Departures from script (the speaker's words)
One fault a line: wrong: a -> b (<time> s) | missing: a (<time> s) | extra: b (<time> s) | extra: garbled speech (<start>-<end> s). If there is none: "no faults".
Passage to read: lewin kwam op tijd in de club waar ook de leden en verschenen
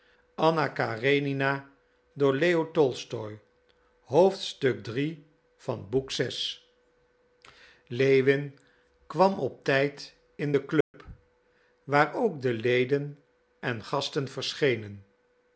extra: gasten (13.8 s)